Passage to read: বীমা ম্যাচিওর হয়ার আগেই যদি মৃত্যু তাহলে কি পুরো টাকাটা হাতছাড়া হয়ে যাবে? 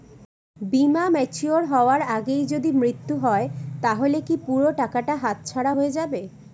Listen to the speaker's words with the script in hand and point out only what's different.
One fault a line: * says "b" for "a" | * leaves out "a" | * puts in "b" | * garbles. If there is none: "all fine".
* puts in "হয়"